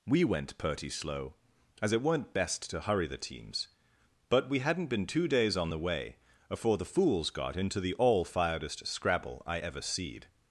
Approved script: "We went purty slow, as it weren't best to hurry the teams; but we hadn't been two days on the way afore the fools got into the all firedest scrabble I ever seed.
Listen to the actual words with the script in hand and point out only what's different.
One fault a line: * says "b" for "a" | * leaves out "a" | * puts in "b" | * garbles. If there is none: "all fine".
all fine